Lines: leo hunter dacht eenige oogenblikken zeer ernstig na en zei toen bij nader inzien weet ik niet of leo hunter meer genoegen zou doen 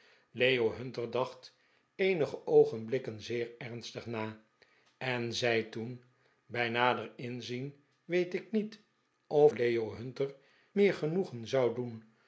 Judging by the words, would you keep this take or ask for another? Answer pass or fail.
pass